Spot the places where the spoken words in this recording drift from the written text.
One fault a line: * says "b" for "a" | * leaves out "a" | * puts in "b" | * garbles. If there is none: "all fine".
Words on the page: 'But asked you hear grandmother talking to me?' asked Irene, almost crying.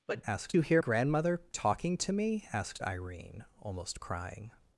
all fine